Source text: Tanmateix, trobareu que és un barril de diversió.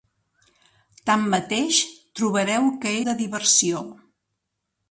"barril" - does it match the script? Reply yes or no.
no